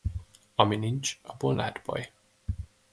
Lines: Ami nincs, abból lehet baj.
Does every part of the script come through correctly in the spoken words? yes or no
yes